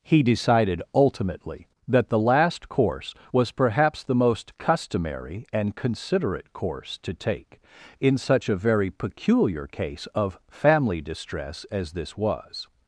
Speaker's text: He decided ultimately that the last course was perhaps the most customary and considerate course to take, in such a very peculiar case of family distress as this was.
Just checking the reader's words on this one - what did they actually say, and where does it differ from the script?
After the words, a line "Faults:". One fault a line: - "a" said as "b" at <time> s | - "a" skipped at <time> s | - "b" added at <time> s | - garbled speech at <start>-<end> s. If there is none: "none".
He decided ultimately that the last course was perhaps the most customary and considerate course to take, in such a very peculiar case of family distress as this was.
Faults:
none